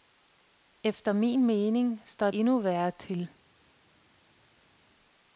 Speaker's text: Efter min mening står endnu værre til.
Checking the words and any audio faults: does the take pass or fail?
pass